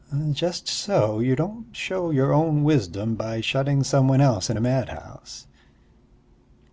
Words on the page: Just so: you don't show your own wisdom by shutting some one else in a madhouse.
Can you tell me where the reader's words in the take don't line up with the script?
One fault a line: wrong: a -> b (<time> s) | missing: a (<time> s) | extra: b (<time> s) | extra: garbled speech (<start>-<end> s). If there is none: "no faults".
no faults